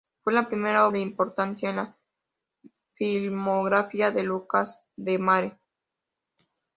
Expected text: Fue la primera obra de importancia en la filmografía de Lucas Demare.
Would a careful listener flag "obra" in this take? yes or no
yes